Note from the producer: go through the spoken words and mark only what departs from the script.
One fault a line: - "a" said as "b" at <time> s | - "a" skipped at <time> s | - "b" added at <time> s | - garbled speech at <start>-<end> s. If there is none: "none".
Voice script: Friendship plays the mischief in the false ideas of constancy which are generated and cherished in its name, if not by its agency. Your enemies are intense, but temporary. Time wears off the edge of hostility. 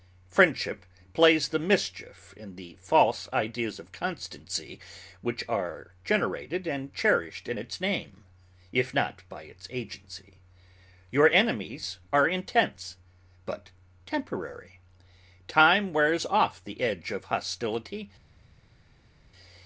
none